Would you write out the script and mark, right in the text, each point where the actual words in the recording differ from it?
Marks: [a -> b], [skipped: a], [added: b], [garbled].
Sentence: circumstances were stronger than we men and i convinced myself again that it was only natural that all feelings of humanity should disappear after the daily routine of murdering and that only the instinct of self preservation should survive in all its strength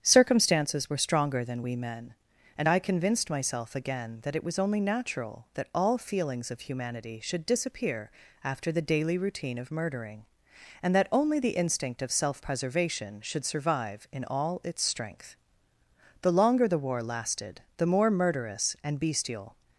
circumstances were stronger than we men and i convinced myself again that it was only natural that all feelings of humanity should disappear after the daily routine of murdering and that only the instinct of self preservation should survive in all its strength [added: the longer the war lasted the more murderous and bestial]